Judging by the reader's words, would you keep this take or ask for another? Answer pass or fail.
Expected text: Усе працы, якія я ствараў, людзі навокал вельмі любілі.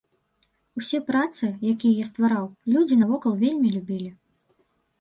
pass